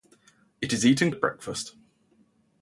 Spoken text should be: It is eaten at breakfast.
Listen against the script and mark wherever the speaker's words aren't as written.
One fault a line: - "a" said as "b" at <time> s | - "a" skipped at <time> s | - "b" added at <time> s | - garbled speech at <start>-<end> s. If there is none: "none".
none